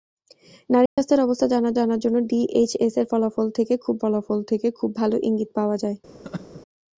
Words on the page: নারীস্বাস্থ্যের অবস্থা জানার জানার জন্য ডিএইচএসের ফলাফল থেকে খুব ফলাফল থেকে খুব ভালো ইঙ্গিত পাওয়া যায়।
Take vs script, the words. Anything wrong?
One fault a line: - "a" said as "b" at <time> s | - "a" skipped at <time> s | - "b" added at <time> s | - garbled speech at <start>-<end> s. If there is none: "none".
none